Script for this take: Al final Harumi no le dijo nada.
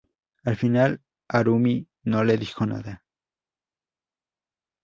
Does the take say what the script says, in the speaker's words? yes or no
yes